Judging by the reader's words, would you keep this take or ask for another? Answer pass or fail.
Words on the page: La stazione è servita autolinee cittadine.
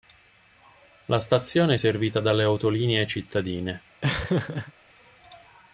fail